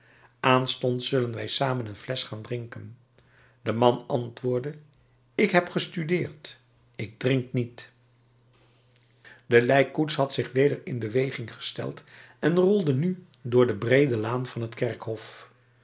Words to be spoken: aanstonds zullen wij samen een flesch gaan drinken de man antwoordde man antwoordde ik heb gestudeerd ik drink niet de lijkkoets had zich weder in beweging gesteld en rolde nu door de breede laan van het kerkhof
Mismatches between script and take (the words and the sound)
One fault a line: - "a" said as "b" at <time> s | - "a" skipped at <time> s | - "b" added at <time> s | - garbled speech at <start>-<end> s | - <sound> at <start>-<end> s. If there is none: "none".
- "man antwoordde" skipped at 4.8 s